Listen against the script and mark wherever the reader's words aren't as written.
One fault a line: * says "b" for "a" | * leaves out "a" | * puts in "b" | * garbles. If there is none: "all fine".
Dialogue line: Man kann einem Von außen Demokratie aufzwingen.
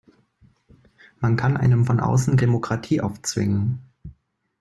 all fine